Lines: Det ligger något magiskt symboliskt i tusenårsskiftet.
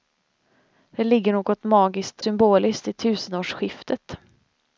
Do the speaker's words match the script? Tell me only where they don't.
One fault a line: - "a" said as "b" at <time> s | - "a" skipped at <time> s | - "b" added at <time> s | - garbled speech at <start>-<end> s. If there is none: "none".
none